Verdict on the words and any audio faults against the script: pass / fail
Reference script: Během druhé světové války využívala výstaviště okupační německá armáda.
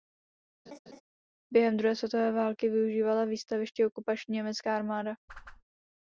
fail